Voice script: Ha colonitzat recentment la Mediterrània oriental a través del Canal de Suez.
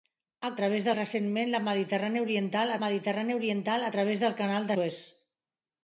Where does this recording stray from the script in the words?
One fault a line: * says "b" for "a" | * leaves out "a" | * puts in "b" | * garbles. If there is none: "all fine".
* says "través" for "colonitzat"
* puts in "Mediterrània oriental"
* leaves out "de"